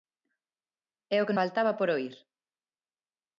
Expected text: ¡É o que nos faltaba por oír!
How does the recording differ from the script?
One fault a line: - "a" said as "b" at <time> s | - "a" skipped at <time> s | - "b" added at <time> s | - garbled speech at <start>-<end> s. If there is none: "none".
- "nos" skipped at 1.4 s